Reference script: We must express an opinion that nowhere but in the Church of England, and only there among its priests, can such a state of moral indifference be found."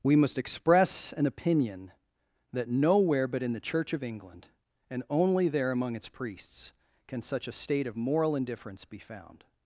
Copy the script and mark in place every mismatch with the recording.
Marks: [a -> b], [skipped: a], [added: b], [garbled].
We must express an opinion that nowhere but in the Church of England, and only there among its priests, can such a state of moral indifference be found."